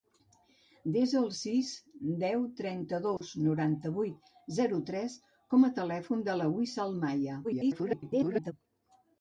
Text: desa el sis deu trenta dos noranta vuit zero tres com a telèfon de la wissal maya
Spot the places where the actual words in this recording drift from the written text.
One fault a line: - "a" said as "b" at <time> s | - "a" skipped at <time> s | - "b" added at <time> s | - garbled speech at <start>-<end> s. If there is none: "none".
- garbled speech at 7.4-8.5 s